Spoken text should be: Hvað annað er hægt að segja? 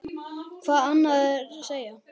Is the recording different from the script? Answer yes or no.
yes